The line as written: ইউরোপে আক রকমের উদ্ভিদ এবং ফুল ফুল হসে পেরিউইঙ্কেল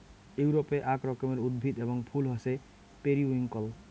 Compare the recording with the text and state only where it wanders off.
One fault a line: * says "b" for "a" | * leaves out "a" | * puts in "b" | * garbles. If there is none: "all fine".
* leaves out "ফুল"